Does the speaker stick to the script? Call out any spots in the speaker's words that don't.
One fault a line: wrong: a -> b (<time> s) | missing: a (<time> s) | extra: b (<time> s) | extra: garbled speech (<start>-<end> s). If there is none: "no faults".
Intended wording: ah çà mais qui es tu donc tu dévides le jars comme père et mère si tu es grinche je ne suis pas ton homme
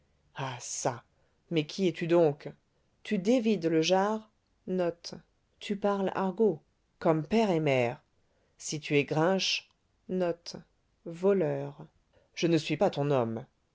no faults